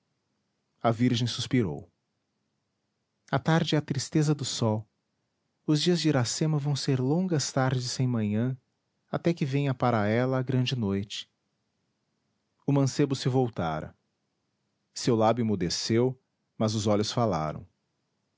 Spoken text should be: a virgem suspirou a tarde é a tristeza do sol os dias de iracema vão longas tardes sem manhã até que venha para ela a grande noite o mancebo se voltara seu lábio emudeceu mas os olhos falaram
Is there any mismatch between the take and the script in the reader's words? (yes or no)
yes